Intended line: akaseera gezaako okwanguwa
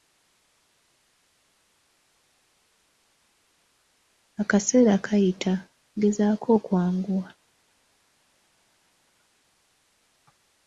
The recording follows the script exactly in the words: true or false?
false